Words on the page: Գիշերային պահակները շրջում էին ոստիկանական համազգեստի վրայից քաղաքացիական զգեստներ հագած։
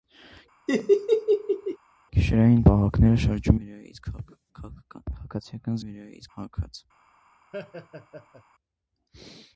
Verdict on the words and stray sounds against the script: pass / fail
fail